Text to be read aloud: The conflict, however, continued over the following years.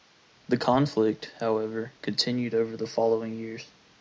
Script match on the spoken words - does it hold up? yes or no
yes